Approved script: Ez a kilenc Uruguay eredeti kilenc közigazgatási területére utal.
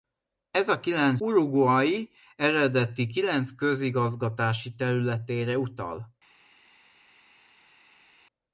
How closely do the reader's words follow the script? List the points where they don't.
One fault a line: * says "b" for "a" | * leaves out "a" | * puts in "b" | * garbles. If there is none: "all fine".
all fine